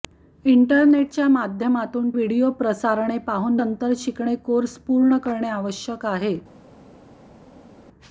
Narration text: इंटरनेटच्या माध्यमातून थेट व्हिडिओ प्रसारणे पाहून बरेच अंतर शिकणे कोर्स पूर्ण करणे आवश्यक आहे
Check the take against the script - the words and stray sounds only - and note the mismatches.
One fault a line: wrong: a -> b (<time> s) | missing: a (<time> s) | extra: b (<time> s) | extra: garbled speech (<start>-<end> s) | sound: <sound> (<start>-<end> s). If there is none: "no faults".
missing: थेट (2.1 s)
missing: बरेच (3.6 s)